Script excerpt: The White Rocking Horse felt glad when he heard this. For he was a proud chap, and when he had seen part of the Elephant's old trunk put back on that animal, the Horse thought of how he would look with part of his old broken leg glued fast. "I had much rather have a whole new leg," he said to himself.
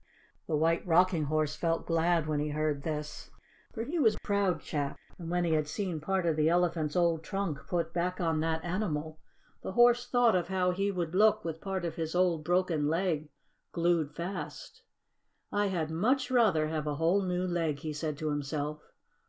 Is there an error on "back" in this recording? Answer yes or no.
no